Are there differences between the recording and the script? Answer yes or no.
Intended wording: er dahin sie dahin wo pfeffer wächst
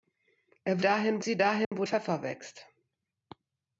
no